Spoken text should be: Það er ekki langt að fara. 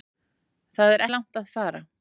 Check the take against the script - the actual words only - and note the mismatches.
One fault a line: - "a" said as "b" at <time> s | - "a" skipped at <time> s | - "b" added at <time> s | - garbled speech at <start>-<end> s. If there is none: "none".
- "ekki" skipped at 1.1 s